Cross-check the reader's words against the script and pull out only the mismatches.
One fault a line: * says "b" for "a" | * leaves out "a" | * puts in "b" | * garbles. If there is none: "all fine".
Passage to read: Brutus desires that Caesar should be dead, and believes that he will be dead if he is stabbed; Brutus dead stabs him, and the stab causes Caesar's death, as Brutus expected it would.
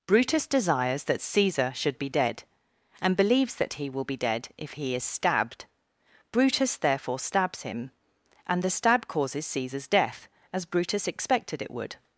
* says "therefore" for "dead"